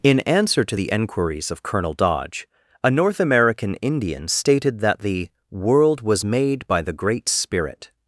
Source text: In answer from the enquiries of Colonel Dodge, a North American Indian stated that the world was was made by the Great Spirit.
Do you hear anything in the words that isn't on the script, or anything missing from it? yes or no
yes